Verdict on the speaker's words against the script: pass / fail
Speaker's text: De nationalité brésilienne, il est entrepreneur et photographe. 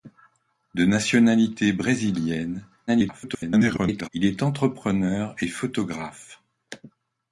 fail